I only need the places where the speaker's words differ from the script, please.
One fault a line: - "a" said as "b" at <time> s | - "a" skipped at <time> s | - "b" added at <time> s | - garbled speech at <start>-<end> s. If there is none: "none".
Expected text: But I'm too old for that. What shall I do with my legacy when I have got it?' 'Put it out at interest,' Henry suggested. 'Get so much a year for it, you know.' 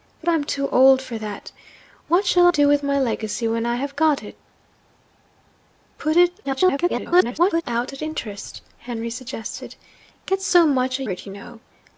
- "I" skipped at 2.5 s
- garbled speech at 6.4-7.6 s
- "year for" skipped at 11.0 s